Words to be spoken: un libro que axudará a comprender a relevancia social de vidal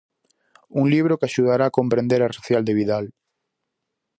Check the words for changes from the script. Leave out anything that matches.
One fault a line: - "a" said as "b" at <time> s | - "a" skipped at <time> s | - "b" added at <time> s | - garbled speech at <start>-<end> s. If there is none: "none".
- "relevancia" skipped at 2.3 s